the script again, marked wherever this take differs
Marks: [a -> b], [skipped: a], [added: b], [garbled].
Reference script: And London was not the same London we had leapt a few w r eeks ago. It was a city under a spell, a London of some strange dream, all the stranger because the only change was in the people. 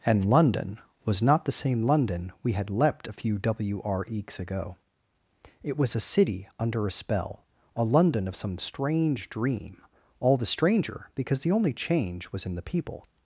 And London was not the same London we had leapt a few w r eeks ago. It was a city under a spell, a London of some strange dream, all the stranger because the only change was in the people.